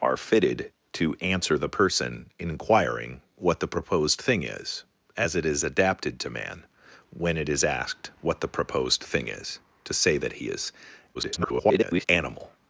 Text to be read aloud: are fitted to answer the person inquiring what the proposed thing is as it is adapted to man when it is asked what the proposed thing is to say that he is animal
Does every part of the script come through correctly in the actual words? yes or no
no